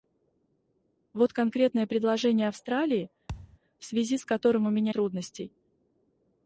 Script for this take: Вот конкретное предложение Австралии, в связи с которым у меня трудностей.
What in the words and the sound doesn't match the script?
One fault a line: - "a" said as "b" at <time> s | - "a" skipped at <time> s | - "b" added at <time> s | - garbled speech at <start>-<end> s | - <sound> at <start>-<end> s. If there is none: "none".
- thud at 3.3-3.6 s